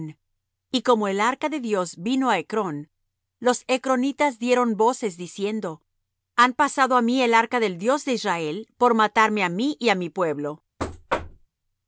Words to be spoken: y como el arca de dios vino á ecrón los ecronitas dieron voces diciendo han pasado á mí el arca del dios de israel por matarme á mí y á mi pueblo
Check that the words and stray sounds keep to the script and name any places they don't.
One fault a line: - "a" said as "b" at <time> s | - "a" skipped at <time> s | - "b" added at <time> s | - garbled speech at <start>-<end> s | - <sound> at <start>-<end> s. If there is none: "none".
- thud at 10.8-11.5 s